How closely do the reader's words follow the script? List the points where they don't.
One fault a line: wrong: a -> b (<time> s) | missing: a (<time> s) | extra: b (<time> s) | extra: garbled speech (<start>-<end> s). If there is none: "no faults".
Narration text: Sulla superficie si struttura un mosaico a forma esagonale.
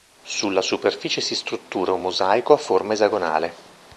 no faults